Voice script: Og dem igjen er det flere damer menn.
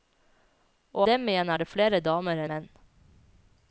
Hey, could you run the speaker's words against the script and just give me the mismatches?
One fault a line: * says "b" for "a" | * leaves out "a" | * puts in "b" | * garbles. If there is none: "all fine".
all fine